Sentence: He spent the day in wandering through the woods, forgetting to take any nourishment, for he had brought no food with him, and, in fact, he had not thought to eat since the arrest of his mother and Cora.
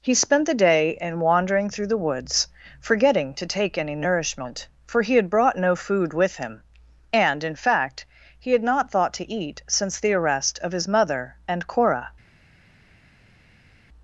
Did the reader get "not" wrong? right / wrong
right